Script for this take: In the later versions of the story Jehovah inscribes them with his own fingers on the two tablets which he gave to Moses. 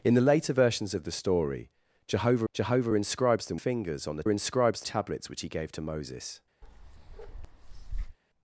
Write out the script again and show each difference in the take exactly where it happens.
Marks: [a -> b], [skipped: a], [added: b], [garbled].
In the later versions of the story Jehovah [added: Jehovah] inscribes them [skipped: with his own] fingers on the [two -> inscribes] tablets which he gave to Moses.